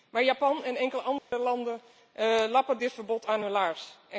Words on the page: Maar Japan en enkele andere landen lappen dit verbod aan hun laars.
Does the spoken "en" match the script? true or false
true